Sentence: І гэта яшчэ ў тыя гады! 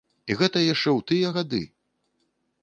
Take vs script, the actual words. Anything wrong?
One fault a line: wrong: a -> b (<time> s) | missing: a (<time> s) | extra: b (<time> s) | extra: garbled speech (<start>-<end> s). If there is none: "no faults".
no faults